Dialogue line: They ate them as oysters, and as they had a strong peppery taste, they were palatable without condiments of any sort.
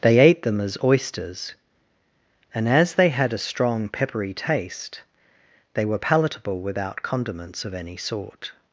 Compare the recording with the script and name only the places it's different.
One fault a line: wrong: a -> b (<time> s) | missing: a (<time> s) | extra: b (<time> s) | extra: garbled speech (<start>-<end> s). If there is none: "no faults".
no faults